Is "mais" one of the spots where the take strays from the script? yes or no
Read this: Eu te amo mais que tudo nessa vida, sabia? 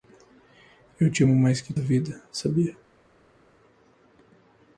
no